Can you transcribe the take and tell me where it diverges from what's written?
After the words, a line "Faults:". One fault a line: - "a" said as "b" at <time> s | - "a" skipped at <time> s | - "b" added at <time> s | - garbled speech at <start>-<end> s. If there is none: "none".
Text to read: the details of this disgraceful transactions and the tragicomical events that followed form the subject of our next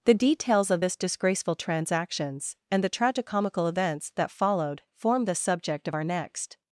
the details of this disgraceful transactions and the tragicomical events that followed form the subject of our next
Faults:
none